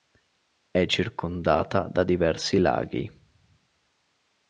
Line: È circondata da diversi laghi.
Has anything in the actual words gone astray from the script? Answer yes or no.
no